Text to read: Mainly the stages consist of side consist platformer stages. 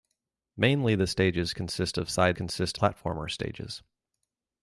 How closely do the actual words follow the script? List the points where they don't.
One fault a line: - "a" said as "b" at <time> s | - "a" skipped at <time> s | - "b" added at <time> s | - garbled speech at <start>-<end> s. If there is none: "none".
none